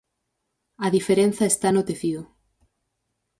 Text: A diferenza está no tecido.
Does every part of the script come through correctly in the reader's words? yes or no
yes